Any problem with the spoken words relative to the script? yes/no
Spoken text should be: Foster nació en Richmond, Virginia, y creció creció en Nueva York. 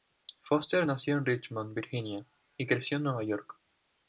yes